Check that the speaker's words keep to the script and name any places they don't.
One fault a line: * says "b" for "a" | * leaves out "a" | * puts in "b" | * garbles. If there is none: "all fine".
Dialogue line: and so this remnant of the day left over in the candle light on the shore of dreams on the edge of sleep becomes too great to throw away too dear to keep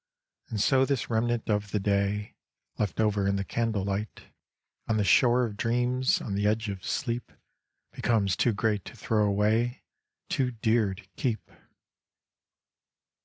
all fine